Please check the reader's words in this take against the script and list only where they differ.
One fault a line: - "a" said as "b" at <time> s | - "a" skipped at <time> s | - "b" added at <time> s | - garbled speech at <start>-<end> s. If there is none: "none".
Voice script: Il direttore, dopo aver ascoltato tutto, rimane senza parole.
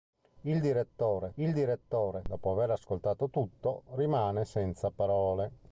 - "il direttore" added at 1.4 s